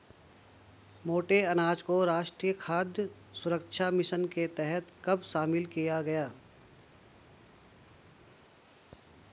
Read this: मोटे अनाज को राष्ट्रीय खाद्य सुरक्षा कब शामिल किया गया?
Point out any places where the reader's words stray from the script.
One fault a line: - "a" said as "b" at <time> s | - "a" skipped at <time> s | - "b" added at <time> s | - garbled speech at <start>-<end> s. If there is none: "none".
- "मिशन के तहत" added at 3.9 s